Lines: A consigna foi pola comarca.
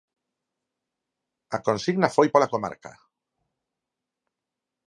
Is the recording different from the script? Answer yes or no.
no